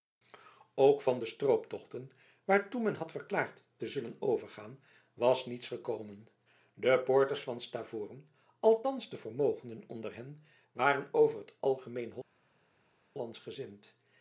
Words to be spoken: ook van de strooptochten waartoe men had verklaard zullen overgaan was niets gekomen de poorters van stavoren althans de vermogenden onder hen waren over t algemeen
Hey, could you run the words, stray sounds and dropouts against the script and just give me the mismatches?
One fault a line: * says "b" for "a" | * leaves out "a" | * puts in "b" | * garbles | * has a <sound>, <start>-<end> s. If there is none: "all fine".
* puts in "te"